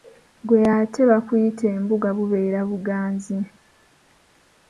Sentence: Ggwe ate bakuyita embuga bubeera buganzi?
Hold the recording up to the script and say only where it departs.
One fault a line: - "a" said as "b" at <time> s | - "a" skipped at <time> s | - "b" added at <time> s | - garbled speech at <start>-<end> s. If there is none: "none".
none